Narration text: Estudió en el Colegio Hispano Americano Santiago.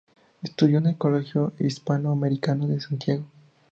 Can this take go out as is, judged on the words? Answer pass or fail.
fail